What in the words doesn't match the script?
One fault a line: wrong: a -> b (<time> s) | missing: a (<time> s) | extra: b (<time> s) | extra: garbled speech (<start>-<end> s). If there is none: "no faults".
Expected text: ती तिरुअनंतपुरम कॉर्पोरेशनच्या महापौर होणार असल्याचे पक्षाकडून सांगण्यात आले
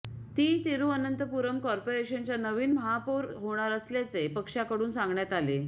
extra: नवीन (2.4 s)